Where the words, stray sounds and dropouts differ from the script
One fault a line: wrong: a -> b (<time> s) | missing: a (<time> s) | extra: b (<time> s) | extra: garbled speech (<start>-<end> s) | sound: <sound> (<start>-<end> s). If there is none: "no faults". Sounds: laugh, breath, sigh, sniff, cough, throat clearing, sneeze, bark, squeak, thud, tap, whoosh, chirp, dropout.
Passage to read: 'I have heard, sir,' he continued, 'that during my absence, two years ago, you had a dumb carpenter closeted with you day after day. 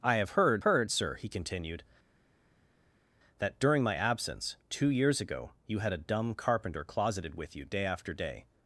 extra: heard (0.6 s)